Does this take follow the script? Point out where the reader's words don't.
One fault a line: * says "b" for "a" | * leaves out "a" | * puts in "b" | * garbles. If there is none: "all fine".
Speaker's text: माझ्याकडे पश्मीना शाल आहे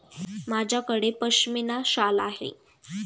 all fine